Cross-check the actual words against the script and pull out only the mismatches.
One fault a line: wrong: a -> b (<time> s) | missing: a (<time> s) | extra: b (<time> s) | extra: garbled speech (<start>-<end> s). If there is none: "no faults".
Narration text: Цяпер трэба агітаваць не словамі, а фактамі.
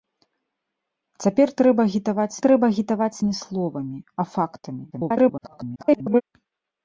extra: трэба агітаваць (2.5 s)
extra: garbled speech (4.9-6.2 s)